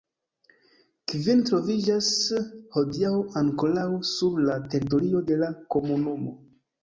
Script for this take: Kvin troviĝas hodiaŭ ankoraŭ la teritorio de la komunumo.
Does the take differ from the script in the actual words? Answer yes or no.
yes